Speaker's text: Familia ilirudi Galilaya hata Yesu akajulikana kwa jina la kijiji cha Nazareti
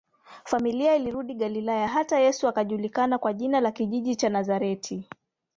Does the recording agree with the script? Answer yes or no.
yes